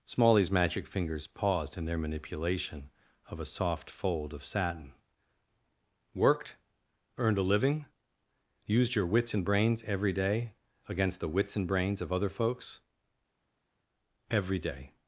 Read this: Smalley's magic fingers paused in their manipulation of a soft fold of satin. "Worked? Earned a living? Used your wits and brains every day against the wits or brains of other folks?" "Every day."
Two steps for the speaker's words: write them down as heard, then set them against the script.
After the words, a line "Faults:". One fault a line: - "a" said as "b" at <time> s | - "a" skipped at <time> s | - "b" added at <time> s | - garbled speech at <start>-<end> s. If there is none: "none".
Smalley's magic fingers paused in their manipulation of a soft fold of satin. "Worked? Earned a living? Used your wits and brains every day against the wits and brains of other folks?" "Every day."
Faults:
- "or" said as "and" at 11.5 s